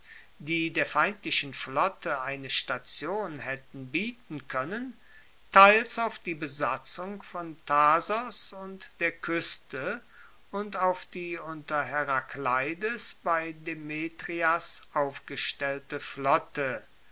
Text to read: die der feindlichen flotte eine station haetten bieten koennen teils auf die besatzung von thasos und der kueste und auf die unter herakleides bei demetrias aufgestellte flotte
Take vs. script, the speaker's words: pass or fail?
pass